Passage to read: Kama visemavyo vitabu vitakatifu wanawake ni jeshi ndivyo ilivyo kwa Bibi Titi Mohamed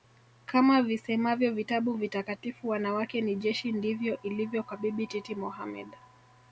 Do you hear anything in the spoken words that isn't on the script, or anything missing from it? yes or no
no